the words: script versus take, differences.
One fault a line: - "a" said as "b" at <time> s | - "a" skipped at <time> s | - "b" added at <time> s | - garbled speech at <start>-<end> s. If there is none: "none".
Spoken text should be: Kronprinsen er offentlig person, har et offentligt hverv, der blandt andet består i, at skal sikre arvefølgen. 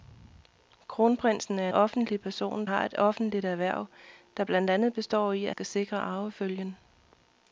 none